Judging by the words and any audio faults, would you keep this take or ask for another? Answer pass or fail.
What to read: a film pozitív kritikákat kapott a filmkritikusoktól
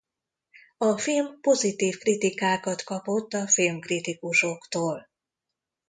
pass